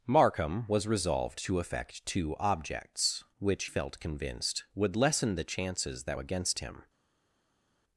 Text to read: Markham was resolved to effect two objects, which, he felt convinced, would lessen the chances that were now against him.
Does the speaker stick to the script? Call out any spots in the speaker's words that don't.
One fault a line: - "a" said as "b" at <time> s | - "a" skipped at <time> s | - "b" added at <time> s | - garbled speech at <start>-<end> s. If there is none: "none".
- "he" skipped at 3.6 s
- "were now" skipped at 6.2 s